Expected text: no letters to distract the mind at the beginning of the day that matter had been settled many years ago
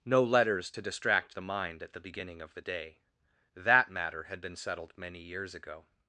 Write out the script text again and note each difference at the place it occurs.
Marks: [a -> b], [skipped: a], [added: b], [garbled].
no letters to distract the mind at the beginning of the day that matter had been settled many years ago